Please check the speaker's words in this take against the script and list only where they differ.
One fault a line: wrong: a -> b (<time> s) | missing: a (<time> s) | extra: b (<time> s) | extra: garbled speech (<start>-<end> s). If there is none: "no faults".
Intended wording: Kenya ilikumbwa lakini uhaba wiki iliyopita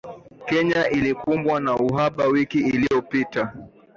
wrong: lakini -> na (1.6 s)